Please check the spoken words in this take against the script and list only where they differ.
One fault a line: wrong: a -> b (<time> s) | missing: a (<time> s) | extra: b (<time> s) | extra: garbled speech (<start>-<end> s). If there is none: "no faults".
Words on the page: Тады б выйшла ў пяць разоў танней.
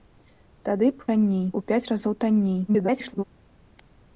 wrong: выйшла -> танней (1.1 s)
extra: garbled speech (2.7-3.2 s)